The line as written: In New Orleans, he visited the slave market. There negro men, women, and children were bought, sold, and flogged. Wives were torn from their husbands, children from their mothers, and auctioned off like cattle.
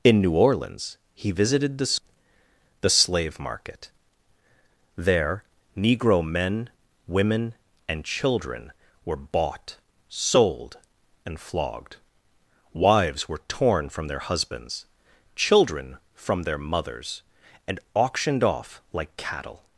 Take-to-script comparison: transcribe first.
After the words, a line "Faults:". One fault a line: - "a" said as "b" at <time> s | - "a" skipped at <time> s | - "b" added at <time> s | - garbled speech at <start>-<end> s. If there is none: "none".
In New Orleans, he visited the the slave market. There negro men, women, and children were bought, sold, and flogged. Wives were torn from their husbands, children from their mothers, and auctioned off like cattle.
Faults:
- "the" added at 2.8 s